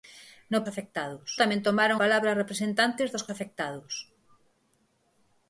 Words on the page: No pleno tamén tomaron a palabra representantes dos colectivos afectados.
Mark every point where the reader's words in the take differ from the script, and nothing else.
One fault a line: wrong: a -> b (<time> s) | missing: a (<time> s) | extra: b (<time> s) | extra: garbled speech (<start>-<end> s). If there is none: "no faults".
wrong: pleno -> afectados (0.7 s)
missing: a (2.0 s)
missing: colectivos (3.3 s)